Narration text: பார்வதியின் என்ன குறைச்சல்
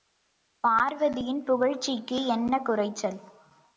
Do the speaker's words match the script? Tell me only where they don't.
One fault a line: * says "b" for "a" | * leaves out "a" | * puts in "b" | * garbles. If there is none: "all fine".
* puts in "புகழ்ச்சிக்கு"